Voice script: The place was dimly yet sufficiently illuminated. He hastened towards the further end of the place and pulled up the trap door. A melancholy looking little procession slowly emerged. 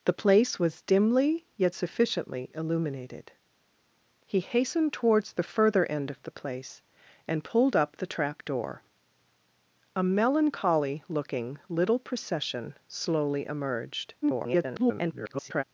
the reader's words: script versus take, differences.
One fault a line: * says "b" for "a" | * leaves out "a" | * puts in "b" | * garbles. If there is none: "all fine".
* garbles